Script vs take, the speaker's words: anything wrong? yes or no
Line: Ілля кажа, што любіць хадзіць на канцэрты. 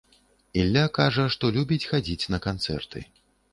no